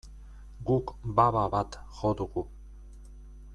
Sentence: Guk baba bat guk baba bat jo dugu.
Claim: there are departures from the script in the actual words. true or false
true